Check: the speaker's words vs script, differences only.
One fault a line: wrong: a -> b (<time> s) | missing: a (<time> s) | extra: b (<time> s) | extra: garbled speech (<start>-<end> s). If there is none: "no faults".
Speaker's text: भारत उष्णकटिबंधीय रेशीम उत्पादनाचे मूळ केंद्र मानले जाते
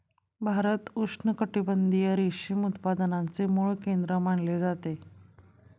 no faults